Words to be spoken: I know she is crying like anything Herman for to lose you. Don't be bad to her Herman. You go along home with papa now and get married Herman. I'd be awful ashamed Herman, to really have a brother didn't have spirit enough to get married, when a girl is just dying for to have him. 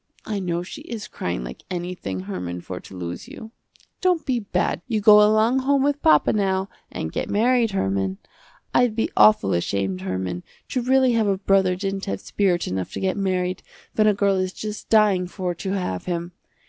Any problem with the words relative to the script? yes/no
yes